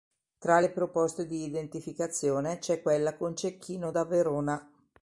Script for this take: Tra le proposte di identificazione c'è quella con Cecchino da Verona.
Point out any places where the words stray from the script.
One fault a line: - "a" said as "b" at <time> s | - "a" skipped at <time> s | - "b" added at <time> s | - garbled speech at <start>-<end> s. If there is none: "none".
none